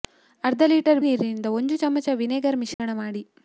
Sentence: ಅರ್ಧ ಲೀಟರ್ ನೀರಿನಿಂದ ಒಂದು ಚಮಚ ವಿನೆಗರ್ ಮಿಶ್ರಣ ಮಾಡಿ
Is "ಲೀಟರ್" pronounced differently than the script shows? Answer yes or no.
no